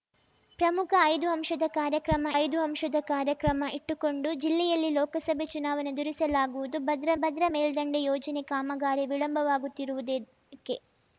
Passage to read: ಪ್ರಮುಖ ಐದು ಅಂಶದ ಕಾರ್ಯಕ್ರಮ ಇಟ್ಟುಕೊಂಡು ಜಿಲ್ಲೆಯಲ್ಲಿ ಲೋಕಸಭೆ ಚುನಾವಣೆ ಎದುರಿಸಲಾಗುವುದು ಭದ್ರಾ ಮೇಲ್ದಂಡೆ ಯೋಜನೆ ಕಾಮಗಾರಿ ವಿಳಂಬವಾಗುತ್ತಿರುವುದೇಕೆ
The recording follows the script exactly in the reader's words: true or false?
false